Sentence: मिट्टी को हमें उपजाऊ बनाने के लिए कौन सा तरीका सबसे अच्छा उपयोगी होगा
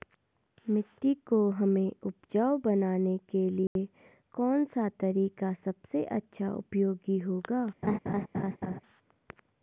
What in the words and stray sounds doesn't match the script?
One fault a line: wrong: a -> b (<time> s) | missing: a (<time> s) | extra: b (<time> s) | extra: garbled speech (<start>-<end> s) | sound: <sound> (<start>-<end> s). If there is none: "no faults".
sound: dropout (3.7-3.8 s)
sound: laugh (7.8-8.8 s)